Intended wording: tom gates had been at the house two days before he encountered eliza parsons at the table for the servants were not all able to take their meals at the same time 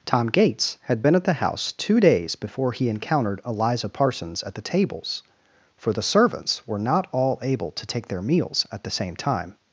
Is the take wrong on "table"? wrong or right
wrong